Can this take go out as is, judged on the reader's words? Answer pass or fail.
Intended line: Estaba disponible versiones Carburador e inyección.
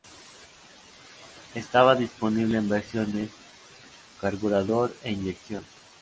fail